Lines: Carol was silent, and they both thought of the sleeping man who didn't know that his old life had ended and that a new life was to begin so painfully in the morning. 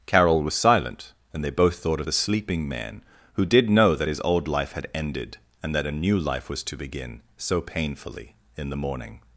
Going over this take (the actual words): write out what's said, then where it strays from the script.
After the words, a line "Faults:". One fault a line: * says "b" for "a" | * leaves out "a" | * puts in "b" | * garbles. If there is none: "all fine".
Carol was silent, and they both thought of the sleeping man who did know that his old life had ended and that a new life was to begin so painfully in the morning.
Faults:
* says "did" for "didn't"